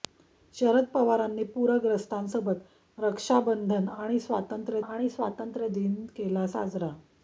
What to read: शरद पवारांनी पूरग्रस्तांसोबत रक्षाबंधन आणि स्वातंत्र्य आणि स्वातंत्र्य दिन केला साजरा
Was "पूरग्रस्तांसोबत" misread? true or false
false